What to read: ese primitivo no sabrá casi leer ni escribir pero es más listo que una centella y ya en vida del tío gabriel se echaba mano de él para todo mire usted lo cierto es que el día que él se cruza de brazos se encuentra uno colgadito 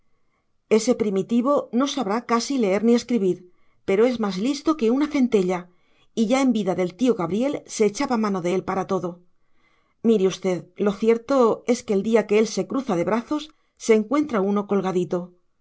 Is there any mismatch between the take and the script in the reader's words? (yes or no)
no